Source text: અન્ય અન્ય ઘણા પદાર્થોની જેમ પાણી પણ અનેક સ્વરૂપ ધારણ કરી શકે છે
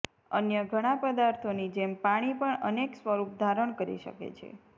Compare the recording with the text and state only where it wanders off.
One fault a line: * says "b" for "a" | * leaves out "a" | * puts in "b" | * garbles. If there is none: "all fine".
* leaves out "અન્ય"